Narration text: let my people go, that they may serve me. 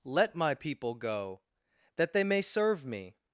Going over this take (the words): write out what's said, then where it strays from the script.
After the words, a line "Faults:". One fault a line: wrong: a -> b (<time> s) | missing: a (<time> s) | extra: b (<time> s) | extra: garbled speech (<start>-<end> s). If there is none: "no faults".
let my people go, that they may serve me.
Faults:
no faults